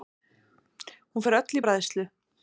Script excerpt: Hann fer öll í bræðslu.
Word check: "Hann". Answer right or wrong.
wrong